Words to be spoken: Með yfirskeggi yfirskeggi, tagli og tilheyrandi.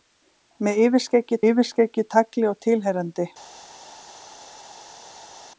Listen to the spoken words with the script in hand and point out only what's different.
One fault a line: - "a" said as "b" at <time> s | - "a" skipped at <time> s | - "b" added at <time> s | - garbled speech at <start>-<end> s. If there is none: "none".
none